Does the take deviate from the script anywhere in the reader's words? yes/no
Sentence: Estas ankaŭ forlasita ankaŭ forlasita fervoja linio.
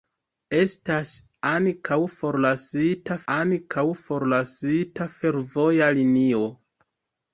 no